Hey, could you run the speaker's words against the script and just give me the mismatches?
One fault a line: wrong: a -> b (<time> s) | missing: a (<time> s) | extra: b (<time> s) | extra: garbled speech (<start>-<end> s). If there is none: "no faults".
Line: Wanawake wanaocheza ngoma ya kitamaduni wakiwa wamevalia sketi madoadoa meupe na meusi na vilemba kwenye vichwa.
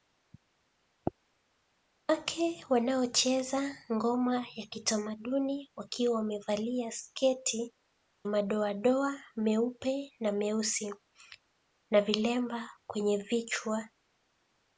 no faults